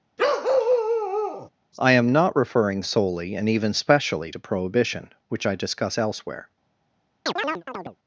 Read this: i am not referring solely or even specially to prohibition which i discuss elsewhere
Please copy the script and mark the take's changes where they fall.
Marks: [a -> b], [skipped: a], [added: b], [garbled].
i am not referring solely [or -> and] even specially to prohibition which i discuss elsewhere